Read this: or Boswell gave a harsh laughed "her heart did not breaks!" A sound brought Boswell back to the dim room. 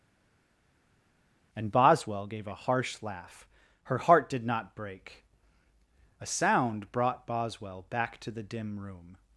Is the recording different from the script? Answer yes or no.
yes